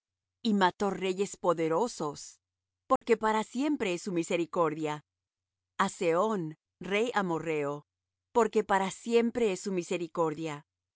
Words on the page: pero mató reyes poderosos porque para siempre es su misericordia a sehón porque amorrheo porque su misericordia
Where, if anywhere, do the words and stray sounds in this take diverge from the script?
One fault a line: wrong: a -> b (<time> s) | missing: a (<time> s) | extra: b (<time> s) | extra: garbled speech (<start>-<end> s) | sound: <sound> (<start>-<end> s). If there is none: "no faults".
wrong: pero -> y (0.4 s)
sound: dropout (3.0-3.0 s)
wrong: porque -> rey (6.8 s)
extra: para siempre es (8.6 s)